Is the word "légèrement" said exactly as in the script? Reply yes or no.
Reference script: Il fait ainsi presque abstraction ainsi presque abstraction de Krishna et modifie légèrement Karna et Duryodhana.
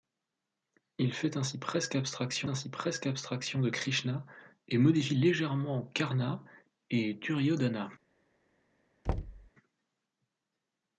yes